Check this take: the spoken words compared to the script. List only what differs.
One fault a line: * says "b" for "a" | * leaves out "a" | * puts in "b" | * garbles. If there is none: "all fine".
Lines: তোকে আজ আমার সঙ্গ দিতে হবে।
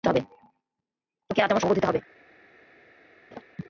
all fine